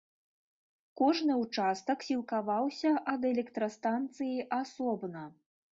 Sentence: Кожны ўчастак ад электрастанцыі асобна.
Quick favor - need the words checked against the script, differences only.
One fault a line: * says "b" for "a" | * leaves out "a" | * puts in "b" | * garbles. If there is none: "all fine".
* puts in "сілкаваўся"